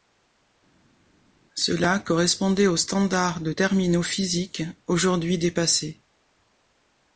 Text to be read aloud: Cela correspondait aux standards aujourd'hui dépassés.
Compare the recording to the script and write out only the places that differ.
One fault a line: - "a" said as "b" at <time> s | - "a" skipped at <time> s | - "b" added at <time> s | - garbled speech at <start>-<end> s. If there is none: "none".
- "de terminaux physiques" added at 3.4 s